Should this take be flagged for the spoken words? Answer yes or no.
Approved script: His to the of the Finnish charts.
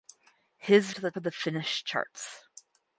no